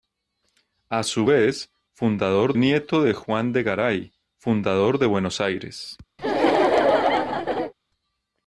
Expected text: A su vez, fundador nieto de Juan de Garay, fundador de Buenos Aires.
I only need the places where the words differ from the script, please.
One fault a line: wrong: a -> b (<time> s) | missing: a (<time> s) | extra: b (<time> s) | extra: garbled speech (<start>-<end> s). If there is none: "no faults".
no faults